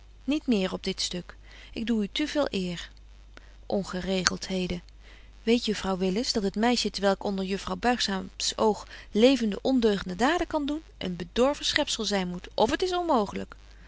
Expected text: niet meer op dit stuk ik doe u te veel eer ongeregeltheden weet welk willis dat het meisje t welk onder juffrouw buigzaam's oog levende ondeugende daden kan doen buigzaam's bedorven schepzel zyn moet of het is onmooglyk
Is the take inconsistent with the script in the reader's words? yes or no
yes